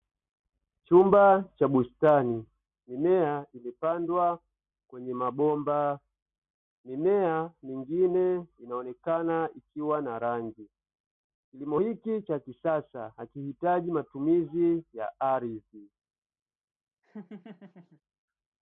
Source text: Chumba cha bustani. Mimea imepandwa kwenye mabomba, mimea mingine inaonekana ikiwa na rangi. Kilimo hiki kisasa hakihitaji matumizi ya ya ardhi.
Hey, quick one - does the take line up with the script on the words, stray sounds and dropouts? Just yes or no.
no